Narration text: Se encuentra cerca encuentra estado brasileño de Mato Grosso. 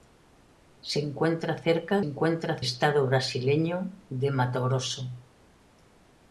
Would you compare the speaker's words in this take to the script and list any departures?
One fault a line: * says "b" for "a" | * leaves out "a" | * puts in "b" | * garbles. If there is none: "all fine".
all fine